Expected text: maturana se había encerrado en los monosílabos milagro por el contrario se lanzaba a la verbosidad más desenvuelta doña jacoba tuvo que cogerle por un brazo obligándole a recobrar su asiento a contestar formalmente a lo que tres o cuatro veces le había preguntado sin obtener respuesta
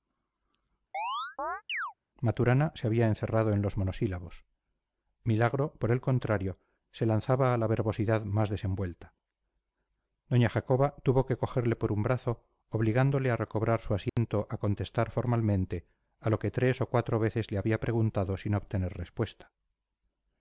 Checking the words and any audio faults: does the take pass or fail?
fail